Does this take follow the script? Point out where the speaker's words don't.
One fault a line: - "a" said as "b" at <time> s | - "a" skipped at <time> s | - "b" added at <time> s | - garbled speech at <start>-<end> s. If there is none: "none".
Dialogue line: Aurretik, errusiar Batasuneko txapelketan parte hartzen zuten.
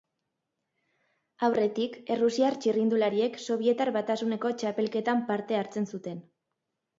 - "txirrindulariek Sobietar" added at 2.6 s